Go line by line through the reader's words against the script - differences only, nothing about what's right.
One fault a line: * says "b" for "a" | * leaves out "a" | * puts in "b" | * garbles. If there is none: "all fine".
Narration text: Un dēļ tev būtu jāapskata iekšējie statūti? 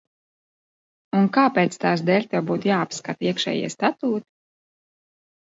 * puts in "kāpēc tās"